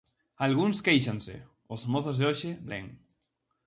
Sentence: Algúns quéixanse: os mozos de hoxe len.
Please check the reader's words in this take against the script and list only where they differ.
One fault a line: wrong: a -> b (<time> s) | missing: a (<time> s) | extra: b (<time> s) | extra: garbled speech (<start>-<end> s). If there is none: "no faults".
no faults